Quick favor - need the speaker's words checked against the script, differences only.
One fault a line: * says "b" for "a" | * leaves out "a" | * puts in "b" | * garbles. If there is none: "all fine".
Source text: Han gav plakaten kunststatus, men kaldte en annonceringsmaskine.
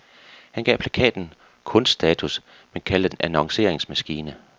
all fine